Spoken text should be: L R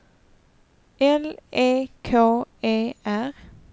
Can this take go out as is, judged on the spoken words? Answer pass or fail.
fail